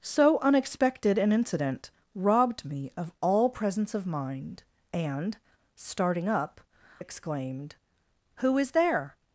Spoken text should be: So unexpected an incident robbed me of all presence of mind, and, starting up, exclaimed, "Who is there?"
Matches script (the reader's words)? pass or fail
pass